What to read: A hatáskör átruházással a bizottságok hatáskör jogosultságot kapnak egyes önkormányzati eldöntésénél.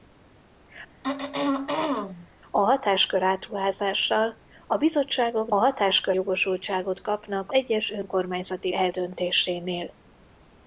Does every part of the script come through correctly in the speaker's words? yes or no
yes